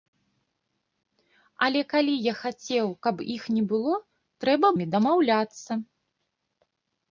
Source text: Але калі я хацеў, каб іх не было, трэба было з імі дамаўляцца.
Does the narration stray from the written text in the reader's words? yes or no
yes